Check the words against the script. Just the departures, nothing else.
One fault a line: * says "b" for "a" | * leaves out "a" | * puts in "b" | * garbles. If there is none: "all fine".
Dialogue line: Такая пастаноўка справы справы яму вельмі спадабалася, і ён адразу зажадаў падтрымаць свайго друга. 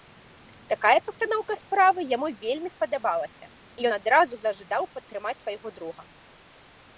* leaves out "справы"